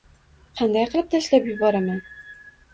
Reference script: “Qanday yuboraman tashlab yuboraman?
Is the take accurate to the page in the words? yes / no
no